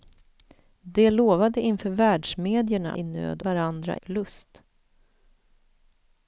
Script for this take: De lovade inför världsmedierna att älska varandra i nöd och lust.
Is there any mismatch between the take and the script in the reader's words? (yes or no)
yes